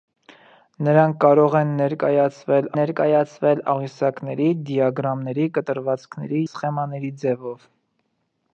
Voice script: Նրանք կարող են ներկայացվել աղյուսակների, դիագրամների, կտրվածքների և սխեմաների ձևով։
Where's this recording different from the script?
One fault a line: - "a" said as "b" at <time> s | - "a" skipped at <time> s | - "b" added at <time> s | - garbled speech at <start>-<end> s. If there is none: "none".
- "ներկայացվել" added at 2.8 s
- "և" skipped at 6.4 s